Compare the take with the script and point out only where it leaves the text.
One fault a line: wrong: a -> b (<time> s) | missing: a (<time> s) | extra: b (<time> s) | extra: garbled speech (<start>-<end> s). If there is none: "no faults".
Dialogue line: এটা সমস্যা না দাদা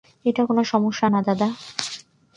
extra: কোনো (0.4 s)